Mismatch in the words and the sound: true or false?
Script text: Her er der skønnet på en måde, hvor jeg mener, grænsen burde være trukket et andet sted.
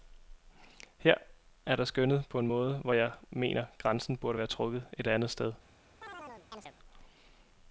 true